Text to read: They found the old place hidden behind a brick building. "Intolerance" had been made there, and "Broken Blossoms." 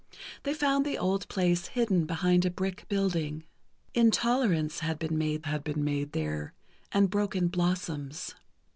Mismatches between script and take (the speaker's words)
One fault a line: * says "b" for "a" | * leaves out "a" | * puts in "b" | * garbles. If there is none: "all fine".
* puts in "had been made"